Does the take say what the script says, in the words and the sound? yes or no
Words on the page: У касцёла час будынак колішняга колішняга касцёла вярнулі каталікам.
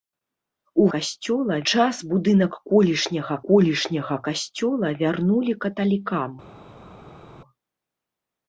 yes